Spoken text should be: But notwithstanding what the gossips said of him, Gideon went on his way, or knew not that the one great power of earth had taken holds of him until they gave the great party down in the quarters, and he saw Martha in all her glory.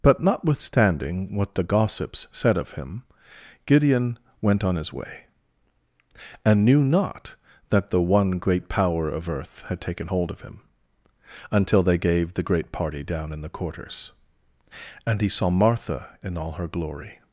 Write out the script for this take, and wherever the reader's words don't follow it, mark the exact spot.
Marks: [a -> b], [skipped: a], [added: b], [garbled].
But notwithstanding what the gossips said of him, Gideon went on his way, [or -> and] knew not that the one great power of earth had taken [holds -> hold] of him until they gave the great party down in the quarters, and he saw Martha in all her glory.